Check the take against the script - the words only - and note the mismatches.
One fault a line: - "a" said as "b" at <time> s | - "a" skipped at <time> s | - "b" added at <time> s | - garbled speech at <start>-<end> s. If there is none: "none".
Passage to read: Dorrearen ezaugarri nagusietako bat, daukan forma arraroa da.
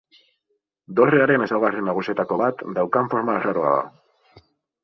none